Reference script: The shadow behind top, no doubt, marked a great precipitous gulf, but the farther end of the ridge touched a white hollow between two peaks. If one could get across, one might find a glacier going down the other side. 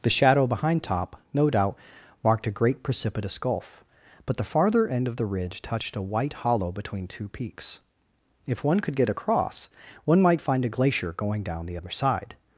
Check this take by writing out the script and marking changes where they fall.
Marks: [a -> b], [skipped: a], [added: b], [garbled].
The shadow behind top, no doubt, marked a great precipitous gulf, but the farther end of the ridge touched a white hollow between two peaks. If one could get across, one might find a glacier going down the other side.